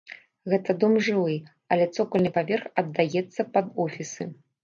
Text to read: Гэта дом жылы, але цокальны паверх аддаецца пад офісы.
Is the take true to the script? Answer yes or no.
yes